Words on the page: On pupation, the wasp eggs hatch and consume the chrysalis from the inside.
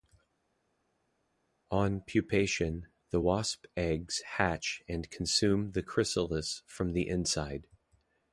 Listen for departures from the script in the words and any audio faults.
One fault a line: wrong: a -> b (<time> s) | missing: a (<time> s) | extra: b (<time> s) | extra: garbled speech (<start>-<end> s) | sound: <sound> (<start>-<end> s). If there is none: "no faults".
no faults